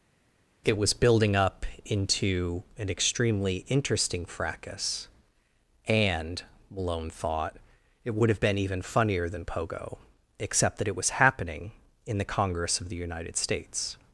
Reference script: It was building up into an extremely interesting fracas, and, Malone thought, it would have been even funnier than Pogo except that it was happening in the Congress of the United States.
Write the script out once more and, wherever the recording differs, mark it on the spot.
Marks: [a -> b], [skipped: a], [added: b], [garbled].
It was building up into an extremely interesting fracas, and, Malone thought, it would have been even funnier than Pogo except that it was happening in the Congress of the United States.